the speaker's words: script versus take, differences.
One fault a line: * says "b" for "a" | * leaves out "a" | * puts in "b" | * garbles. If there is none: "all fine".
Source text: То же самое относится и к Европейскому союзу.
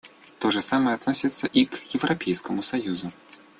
all fine